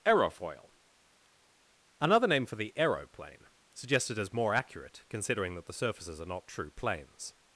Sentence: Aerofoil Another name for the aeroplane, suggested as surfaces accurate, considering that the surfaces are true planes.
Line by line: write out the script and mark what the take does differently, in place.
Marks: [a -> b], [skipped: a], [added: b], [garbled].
Aerofoil Another name for the aeroplane, suggested as [surfaces -> more] accurate, considering that the surfaces are [added: not] true planes.